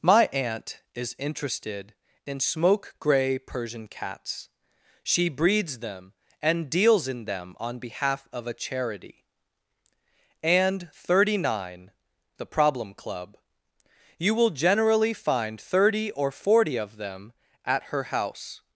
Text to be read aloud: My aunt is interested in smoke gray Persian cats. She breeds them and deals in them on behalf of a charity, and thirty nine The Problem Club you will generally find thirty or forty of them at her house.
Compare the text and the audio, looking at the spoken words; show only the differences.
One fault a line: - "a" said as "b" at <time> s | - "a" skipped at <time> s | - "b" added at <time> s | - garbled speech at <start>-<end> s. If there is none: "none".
none